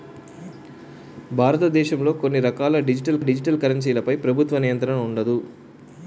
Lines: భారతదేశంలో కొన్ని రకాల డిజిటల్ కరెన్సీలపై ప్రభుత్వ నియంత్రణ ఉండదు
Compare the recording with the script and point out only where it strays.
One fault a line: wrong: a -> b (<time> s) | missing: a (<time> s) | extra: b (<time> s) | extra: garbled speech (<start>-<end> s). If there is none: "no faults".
extra: డిజిటల్ (3.2 s)